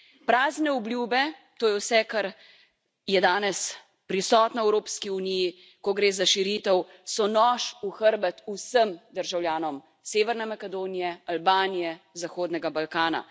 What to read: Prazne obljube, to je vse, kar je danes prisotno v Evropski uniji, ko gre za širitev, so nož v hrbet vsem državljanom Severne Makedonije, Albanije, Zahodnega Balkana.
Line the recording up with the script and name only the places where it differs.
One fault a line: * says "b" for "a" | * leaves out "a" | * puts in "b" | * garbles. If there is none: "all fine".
all fine